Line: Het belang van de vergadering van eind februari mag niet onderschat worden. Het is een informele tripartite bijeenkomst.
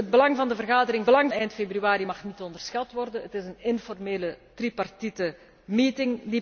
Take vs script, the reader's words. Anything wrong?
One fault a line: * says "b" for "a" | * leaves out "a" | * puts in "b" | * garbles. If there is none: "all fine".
* says "belang" for "van"